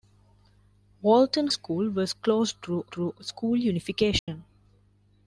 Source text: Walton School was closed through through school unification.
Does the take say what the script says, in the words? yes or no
yes